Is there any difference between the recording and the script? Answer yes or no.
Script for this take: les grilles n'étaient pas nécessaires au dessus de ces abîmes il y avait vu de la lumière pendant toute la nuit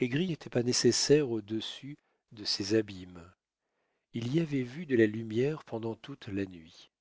no